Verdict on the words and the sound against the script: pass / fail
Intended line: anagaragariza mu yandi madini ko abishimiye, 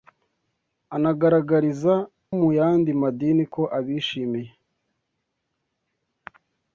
pass